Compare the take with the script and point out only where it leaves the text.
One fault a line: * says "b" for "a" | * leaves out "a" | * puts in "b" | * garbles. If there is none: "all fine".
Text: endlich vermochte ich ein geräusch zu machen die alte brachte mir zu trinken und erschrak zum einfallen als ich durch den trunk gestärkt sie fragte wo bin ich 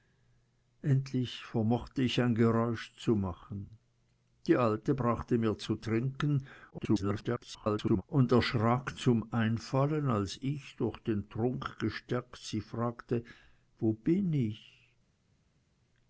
* garbles